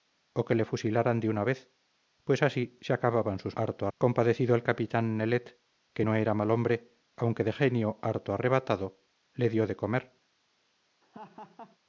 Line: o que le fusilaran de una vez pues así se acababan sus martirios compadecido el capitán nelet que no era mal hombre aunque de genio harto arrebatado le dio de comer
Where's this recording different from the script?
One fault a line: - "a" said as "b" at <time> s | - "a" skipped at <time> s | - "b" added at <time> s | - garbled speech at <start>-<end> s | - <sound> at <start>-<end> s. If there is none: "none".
- "martirios" said as "harto" at 3.5 s
- laugh at 11.0-11.8 s